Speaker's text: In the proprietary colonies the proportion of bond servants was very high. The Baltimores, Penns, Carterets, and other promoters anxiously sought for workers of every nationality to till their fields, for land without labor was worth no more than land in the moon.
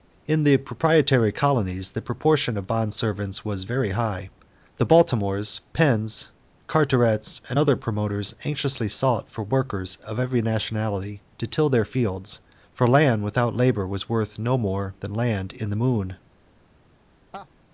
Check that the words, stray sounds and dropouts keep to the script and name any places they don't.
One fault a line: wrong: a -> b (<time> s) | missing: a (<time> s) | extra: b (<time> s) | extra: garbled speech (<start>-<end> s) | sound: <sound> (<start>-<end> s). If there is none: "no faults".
sound: laugh (17.3-17.5 s)